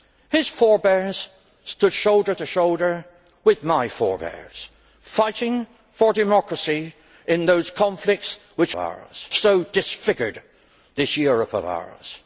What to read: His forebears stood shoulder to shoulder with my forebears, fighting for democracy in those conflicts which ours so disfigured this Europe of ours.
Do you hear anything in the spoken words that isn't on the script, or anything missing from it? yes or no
no